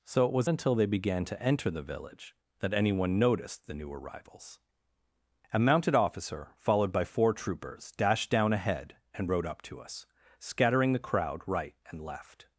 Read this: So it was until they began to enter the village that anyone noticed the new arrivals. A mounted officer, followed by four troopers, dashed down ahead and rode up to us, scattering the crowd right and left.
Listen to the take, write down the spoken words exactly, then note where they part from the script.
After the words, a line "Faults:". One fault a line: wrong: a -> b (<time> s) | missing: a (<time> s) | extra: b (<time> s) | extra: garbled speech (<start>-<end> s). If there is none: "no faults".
So it was until they began to enter the village that anyone noticed the new arrivals. A mounted officer, followed by four troopers, dashed down ahead and rode up to us, scattering the crowd right and left.
Faults:
no faults